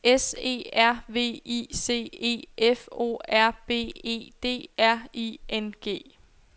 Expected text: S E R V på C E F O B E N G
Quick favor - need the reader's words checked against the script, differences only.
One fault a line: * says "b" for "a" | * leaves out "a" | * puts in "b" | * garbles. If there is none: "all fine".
* says "I" for "på"
* puts in "R"
* puts in "D R I"